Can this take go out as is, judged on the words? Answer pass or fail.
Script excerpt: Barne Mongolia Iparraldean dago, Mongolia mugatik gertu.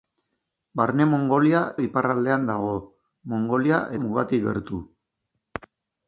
pass